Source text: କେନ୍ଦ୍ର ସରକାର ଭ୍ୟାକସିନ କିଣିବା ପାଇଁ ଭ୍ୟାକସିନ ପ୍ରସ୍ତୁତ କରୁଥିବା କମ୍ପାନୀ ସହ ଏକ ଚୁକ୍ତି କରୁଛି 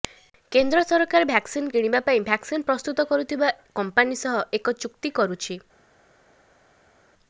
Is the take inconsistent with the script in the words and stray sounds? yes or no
no